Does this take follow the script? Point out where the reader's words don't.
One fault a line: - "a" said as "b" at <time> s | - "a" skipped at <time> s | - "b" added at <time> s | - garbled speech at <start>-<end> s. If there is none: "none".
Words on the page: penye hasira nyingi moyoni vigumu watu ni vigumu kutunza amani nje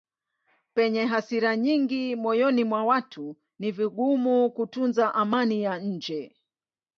- "vigumu" said as "mwa" at 2.6 s
- "ya" added at 5.6 s